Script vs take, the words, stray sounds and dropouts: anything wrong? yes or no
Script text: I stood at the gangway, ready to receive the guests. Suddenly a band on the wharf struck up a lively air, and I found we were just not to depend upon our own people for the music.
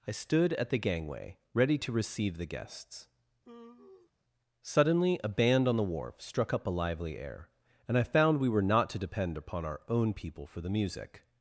yes